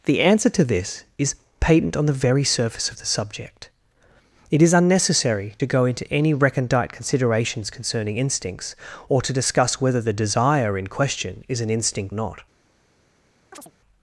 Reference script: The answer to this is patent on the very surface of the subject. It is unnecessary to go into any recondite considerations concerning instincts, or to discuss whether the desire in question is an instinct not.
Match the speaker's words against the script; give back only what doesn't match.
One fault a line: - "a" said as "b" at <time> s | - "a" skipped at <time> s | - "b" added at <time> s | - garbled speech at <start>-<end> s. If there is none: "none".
none